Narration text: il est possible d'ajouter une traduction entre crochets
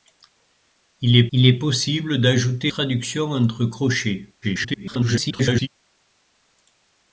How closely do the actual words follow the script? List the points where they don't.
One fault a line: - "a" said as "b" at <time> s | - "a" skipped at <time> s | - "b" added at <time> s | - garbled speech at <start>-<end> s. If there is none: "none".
- "il est" added at 1.3 s
- "une" skipped at 2.7 s
- garbled speech at 4.4-5.7 s